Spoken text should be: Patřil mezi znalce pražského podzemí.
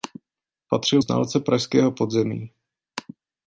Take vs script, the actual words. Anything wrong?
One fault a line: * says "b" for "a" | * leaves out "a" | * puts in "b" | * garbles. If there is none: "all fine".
* leaves out "mezi"